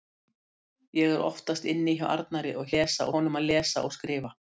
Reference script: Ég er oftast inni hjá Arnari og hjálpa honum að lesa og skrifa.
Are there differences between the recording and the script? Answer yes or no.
yes